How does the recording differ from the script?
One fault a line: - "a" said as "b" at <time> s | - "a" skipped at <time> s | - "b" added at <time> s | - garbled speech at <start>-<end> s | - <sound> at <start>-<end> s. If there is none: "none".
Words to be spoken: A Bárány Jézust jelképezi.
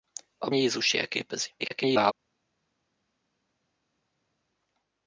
- "Bárány" skipped at 0.5 s
- garbled speech at 1.6-2.1 s